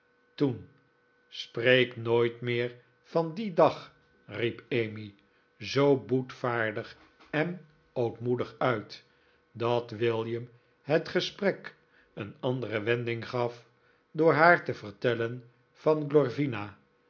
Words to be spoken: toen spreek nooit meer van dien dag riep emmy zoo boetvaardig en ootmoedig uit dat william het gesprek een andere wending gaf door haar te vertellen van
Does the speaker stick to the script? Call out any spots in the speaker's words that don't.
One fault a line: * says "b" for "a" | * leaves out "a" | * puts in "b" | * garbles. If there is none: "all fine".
all fine